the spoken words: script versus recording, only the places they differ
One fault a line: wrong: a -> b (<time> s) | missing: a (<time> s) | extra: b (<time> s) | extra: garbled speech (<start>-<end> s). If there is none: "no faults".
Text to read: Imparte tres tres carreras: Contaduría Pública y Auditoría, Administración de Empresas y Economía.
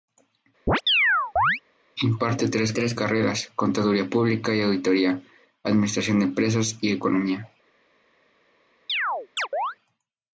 no faults